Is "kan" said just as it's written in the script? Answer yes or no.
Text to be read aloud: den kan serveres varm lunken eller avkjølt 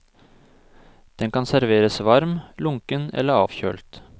yes